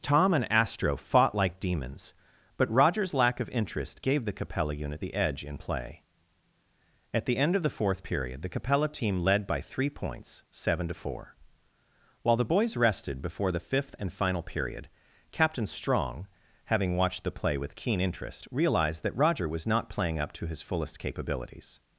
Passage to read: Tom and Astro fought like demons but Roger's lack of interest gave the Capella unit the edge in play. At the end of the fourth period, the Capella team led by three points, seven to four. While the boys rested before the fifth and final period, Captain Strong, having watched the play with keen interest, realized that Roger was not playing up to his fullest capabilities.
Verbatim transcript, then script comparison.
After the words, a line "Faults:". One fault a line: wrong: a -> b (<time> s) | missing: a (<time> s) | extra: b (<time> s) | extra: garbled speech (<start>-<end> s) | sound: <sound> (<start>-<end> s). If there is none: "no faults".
Tom and Astro fought like demons but Roger's lack of interest gave the Capella unit the edge in play. At the end of the fourth period, the Capella team led by three points, seven to four. While the boys rested before the fifth and final period, Captain Strong, having watched the play with keen interest, realized that Roger was not playing up to his fullest capabilities.
Faults:
no faults